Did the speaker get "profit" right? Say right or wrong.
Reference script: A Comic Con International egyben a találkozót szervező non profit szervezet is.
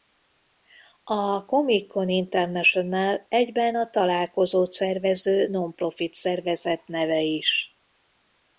right